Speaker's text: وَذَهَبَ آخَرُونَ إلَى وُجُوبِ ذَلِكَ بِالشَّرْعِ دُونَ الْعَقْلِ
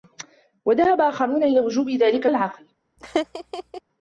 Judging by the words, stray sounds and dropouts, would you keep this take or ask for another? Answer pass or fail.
fail